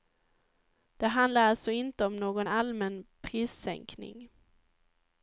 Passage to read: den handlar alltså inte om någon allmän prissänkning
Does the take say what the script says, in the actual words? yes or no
no